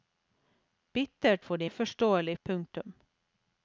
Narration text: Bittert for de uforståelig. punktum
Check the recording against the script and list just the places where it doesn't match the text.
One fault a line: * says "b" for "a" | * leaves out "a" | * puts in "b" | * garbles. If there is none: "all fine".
all fine